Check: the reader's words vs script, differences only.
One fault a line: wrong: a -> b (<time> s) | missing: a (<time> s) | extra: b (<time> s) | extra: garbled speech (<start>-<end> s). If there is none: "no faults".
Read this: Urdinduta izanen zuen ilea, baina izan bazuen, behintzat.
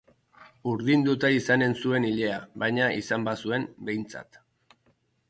no faults